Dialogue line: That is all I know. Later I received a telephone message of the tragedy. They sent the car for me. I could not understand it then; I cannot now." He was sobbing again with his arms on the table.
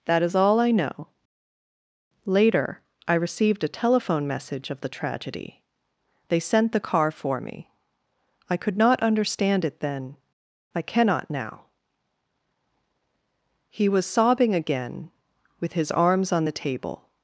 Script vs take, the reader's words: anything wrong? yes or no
no